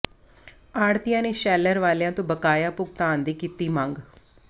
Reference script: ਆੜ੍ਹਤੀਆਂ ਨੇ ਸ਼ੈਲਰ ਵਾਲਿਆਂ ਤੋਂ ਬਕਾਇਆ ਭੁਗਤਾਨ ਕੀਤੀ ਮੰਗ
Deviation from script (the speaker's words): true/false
true